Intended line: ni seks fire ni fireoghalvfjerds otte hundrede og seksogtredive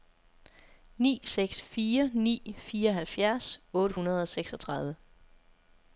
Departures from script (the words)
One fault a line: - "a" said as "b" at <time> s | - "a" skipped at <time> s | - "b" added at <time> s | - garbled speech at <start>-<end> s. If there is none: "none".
none